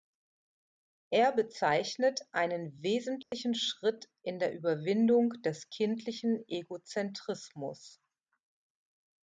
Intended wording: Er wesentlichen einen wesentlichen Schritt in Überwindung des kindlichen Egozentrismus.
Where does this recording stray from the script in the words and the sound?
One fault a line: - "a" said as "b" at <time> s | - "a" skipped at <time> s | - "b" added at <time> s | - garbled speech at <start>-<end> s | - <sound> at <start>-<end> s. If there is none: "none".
- "wesentlichen" said as "bezeichnet" at 1.3 s
- dropout at 3.2-3.3 s
- "der" added at 4.4 s